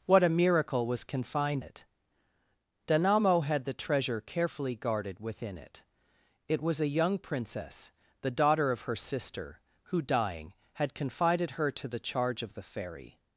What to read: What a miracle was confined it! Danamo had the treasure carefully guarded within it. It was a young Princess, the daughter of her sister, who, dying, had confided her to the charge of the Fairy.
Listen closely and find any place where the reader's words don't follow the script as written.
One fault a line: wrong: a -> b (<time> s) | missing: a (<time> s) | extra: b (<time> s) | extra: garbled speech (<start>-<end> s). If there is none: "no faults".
no faults